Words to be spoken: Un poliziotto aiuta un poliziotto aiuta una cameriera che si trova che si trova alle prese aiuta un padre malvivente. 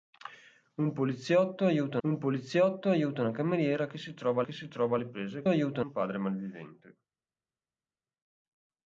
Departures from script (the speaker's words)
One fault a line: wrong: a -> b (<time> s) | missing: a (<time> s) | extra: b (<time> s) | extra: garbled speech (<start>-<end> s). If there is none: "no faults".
no faults